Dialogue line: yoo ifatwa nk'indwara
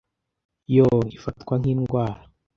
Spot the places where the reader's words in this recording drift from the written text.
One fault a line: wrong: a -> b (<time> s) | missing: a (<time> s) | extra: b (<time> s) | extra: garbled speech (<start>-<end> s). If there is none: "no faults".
no faults